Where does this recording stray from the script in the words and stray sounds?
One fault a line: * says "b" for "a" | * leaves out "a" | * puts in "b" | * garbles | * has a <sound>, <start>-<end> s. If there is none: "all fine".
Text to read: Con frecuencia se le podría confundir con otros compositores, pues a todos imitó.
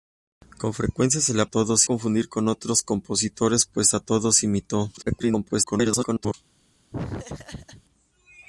* says "todos" for "podría"
* garbles
* has a laugh, 6.9-7.8 s